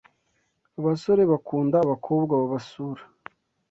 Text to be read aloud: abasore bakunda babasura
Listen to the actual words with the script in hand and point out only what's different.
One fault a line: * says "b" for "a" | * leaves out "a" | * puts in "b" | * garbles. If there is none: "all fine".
* puts in "abakobwa"